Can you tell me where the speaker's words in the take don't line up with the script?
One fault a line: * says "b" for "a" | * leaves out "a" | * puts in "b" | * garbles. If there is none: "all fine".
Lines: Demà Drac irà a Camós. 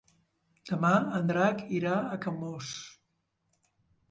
* puts in "en"